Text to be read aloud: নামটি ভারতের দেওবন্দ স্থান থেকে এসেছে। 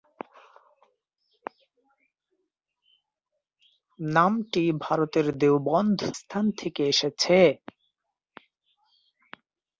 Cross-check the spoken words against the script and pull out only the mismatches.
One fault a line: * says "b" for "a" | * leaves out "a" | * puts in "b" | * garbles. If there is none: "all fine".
all fine